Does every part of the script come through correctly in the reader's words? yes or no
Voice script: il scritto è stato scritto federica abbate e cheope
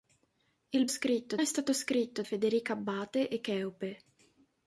yes